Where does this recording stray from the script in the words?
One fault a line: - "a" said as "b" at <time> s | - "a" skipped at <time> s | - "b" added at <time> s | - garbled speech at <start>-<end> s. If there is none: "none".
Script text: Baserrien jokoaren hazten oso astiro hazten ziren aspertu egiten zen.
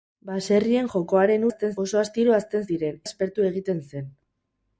none